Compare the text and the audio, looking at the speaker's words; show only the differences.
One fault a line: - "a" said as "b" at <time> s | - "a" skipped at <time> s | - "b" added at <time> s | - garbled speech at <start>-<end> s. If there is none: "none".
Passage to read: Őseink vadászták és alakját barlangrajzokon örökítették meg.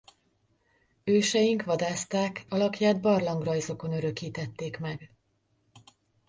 - "és" skipped at 2.5 s